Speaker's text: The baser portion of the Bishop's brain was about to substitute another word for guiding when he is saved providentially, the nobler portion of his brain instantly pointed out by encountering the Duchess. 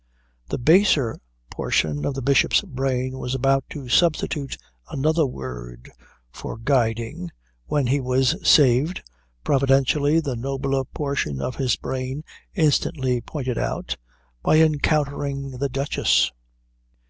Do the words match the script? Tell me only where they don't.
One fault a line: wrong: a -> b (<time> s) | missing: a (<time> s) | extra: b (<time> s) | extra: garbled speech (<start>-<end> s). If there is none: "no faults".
wrong: is -> was (8.0 s)